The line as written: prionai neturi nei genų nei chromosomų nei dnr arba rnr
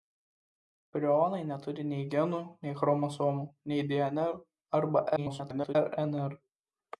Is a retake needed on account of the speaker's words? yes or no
yes